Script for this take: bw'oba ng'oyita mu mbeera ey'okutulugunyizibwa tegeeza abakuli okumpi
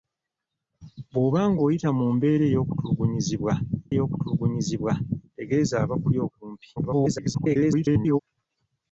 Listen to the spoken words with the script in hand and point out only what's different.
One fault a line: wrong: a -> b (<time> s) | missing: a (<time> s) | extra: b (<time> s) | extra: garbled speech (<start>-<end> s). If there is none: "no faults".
extra: ey'okutulugunyizibwa (3.9 s)
extra: garbled speech (6.8-8.2 s)